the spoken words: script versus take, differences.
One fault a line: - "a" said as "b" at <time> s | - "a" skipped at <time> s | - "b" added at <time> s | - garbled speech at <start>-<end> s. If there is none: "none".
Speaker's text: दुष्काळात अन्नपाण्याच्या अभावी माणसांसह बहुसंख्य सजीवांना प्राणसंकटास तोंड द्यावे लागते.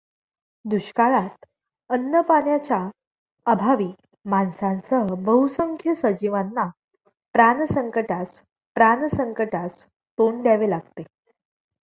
- "प्राणसंकटास" added at 8.8 s